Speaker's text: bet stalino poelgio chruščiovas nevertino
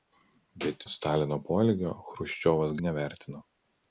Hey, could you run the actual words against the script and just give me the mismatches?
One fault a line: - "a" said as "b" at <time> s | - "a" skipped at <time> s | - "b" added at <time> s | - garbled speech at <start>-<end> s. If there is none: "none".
none